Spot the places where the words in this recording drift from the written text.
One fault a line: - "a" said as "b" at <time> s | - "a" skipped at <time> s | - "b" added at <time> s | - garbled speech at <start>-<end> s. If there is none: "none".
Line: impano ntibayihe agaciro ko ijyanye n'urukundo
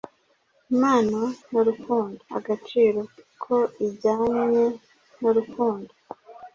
- "ntibayihe" said as "n'urukundo" at 1.5 s